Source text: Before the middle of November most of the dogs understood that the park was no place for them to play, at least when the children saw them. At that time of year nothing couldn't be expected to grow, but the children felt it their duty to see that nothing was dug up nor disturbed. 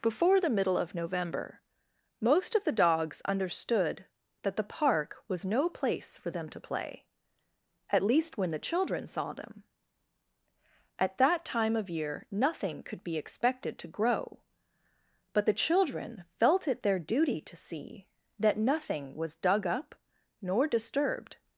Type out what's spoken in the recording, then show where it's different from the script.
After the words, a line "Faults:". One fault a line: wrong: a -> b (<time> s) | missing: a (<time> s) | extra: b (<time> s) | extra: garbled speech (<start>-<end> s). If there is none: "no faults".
Before the middle of November most of the dogs understood that the park was no place for them to play, at least when the children saw them. At that time of year nothing could be expected to grow, but the children felt it their duty to see that nothing was dug up nor disturbed.
Faults:
wrong: couldn't -> could (12.8 s)